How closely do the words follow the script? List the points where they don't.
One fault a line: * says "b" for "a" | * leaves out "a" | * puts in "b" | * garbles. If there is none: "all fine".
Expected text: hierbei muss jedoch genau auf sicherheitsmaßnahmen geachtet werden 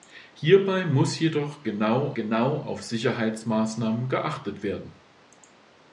* puts in "genau"